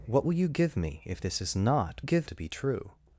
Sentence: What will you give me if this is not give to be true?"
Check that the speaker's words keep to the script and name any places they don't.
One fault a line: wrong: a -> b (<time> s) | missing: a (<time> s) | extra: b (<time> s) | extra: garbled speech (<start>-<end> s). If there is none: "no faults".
no faults